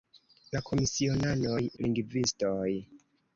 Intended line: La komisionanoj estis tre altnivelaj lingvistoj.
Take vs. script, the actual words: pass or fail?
fail